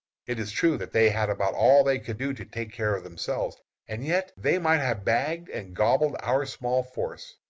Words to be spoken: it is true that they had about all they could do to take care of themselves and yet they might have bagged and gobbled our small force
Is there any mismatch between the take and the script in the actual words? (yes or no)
no